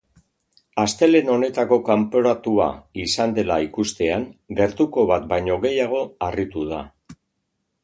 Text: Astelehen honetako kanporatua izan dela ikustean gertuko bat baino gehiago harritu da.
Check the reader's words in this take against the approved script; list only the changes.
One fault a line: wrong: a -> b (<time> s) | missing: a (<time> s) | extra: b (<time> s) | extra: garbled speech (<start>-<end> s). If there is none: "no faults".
no faults